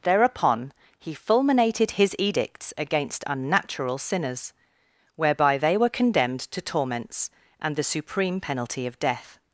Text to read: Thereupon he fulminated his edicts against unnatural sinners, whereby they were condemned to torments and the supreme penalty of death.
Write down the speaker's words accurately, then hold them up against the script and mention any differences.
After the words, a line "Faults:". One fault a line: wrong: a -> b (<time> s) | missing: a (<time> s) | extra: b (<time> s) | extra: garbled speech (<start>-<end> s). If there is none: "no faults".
Thereupon he fulminated his edicts against unnatural sinners, whereby they were condemned to torments and the supreme penalty of death.
Faults:
no faults